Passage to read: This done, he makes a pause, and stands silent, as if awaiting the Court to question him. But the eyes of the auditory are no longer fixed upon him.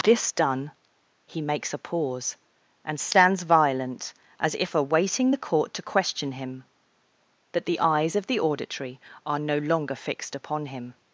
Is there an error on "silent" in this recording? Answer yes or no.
yes